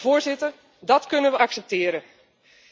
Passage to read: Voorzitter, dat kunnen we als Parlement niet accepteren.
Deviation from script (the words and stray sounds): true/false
true